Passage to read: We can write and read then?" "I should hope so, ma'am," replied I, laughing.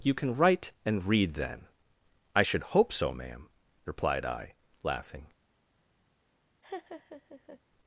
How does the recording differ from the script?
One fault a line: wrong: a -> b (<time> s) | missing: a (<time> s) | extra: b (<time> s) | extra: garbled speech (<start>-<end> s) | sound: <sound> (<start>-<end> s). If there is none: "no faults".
wrong: We -> You (0.0 s)
sound: laugh (6.6-7.6 s)